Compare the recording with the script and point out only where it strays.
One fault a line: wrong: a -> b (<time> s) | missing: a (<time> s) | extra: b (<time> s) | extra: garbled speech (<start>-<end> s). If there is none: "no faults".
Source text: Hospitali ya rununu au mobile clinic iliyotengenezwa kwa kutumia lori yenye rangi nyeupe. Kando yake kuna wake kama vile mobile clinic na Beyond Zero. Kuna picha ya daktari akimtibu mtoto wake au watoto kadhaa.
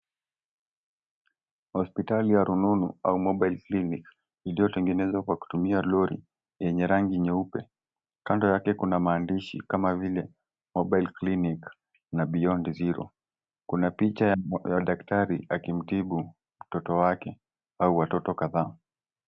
wrong: wake -> maandishi (9.0 s)